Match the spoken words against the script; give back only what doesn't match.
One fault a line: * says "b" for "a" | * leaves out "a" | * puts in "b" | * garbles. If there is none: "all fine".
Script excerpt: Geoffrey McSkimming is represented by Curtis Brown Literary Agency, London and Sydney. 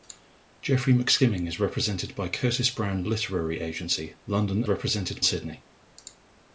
* says "represented" for "and"